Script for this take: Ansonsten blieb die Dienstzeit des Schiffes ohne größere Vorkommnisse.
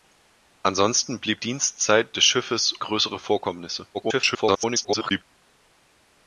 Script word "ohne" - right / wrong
wrong